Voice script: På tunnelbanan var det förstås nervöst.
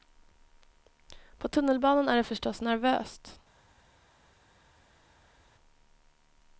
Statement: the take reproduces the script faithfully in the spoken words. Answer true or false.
false